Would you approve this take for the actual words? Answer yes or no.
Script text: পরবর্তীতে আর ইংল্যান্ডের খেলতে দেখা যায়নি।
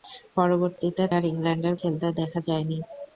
yes